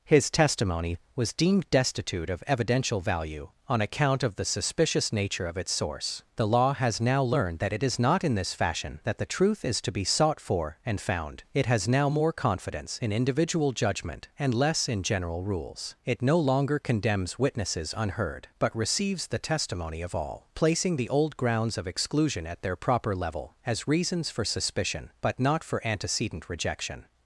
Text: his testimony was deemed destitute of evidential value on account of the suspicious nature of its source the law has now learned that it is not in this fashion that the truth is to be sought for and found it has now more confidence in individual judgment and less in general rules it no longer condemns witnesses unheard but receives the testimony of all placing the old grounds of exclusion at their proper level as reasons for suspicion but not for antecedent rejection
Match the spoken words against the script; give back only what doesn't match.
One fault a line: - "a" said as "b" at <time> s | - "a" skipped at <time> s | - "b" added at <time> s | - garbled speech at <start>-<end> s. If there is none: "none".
none